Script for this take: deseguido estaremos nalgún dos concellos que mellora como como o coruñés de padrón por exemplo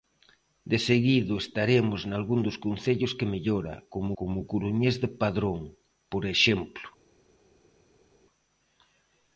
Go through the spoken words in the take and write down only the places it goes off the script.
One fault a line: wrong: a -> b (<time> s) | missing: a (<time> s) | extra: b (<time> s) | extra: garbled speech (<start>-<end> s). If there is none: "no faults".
no faults